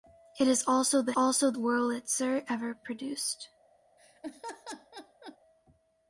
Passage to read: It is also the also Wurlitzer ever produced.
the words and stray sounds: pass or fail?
fail